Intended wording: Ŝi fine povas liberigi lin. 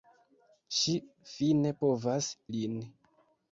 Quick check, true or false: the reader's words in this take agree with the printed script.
false